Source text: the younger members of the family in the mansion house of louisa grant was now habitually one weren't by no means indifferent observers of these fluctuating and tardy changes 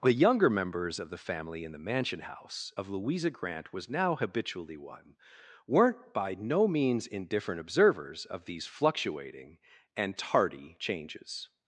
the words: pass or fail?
pass